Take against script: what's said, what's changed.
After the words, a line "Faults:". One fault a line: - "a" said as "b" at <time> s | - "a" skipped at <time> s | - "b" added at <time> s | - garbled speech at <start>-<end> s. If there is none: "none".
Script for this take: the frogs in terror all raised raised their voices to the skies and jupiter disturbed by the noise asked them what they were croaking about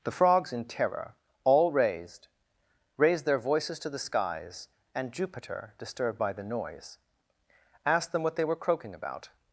the frogs in terror all raised raised their voices to the skies and jupiter disturbed by the noise asked them what they were croaking about
Faults:
none